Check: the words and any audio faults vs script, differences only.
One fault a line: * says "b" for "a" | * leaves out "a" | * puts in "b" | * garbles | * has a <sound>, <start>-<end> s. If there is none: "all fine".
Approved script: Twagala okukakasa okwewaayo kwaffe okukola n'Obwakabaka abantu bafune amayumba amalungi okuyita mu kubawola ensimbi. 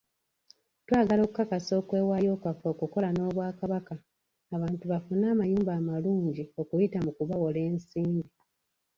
all fine